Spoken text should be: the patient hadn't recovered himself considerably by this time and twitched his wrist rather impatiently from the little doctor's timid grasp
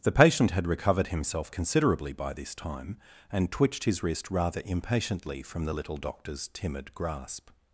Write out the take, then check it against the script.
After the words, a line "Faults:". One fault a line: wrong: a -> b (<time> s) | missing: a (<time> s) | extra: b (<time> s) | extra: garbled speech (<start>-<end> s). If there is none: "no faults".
the patient had recovered himself considerably by this time and twitched his wrist rather impatiently from the little doctor's timid grasp
Faults:
wrong: hadn't -> had (0.5 s)